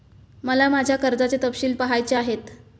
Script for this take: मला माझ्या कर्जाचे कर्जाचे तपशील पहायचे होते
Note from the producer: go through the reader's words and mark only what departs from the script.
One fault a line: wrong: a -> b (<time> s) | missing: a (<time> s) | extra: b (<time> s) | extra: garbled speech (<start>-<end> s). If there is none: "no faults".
missing: कर्जाचे (1.4 s)
wrong: होते -> आहेत (2.1 s)